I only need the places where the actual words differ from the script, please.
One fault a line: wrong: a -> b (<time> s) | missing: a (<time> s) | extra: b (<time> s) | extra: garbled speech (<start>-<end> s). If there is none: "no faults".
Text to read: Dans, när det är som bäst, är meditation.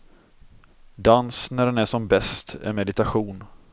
wrong: det -> den (1.6 s)